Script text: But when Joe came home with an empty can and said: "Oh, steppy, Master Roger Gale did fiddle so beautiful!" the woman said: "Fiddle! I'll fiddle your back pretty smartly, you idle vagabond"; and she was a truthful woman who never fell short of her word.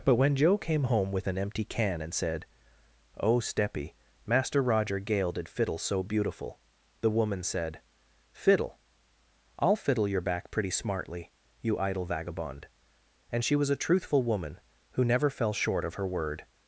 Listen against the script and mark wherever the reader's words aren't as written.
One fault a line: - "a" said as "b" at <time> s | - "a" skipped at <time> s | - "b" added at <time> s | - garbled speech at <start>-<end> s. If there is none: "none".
none